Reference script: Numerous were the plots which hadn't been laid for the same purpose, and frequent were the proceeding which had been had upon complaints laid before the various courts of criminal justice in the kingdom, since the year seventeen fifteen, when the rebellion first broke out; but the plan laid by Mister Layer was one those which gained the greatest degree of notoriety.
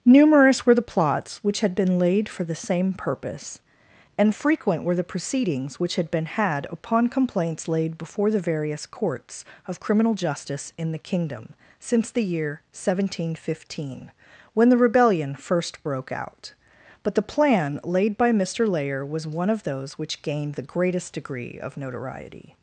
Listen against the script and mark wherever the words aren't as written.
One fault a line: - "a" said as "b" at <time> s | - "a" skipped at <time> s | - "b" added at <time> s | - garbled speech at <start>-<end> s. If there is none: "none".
- "hadn't" said as "had" at 1.6 s
- "proceeding" said as "proceedings" at 5.0 s
- "of" added at 19.5 s